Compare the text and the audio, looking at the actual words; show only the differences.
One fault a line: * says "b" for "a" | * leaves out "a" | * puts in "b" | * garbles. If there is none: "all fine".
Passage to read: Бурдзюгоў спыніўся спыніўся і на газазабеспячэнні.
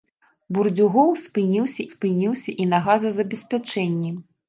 all fine